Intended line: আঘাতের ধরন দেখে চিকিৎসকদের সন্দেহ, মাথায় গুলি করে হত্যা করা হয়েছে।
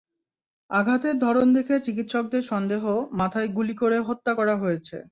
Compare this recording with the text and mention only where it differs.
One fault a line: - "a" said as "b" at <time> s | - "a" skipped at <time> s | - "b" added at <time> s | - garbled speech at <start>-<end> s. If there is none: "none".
none